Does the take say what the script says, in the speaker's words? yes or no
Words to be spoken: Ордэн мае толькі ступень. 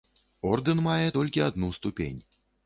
no